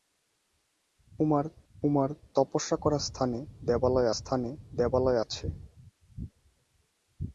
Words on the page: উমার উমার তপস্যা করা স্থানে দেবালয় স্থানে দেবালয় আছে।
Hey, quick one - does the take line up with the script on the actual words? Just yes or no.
yes